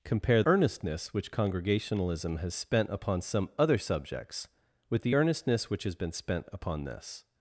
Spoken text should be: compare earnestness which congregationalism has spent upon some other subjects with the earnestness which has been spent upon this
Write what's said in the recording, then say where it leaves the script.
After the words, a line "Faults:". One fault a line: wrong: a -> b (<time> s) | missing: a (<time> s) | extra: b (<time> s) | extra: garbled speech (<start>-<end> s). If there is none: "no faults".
compare earnestness which congregationalism has spent upon some other subjects with the earnestness which has been spent upon this
Faults:
no faults